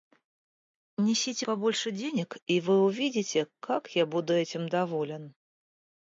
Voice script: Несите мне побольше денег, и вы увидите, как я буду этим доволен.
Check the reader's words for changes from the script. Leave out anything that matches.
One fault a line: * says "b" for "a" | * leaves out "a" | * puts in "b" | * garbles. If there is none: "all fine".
* leaves out "мне"